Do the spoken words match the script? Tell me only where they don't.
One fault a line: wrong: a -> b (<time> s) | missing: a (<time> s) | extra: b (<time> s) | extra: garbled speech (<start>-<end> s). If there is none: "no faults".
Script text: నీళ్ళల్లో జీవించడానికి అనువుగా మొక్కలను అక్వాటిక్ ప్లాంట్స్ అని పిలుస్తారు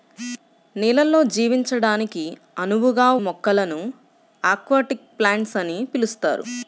no faults